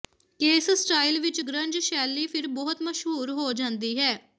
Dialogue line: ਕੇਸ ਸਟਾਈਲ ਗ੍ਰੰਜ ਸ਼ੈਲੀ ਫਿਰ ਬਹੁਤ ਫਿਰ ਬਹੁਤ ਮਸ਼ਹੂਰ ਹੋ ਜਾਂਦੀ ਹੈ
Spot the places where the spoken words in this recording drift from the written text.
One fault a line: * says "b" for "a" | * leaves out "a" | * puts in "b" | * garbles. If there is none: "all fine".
* puts in "ਵਿਚ"
* leaves out "ਫਿਰ ਬਹੁਤ"